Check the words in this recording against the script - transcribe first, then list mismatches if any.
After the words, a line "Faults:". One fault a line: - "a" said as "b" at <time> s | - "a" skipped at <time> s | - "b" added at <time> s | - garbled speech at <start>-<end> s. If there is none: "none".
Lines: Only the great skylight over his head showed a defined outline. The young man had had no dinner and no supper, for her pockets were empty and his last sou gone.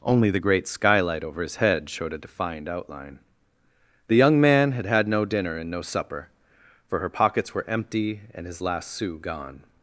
Only the great skylight over his head showed a defined outline. The young man had had no dinner and no supper, for her pockets were empty and his last sou gone.
Faults:
none